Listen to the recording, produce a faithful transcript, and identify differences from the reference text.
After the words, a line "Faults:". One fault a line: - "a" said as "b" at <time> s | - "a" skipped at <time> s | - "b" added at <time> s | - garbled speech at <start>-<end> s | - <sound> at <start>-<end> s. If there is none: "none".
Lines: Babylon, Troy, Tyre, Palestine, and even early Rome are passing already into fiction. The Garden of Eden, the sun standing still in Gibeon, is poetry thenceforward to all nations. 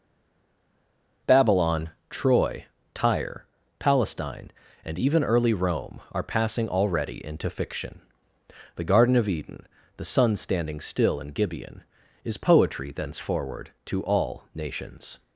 Babylon, Troy, Tyre, Palestine, and even early Rome are passing already into fiction. The Garden of Eden, the sun standing still in Gibeon, is poetry thenceforward to all nations.
Faults:
none